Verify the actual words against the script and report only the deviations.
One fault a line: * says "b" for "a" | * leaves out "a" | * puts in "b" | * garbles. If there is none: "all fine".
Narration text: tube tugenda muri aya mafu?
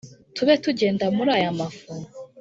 all fine